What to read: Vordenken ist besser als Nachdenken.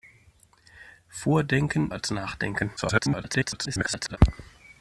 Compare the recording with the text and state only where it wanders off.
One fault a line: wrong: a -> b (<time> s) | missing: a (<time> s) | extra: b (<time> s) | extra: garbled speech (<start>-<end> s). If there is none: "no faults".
missing: ist besser (1.9 s)
extra: garbled speech (2.8-4.2 s)